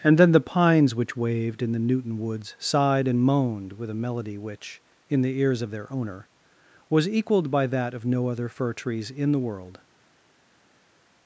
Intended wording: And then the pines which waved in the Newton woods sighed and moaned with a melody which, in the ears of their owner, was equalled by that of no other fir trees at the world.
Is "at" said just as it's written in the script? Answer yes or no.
no